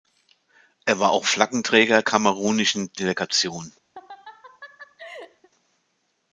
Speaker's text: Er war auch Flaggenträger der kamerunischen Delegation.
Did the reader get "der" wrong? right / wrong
wrong